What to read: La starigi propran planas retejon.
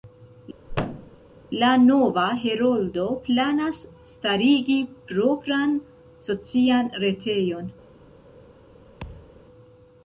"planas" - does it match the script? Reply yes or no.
no